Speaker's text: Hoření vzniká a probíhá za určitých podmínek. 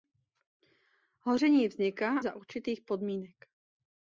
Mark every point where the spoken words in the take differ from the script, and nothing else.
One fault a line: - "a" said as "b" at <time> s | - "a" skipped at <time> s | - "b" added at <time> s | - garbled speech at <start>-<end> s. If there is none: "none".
- "a probíhá" skipped at 2.2 s